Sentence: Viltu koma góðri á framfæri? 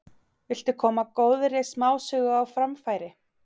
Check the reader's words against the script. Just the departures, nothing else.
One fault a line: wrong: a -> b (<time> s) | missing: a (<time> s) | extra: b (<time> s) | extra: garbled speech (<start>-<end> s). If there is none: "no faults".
extra: smásögu (1.7 s)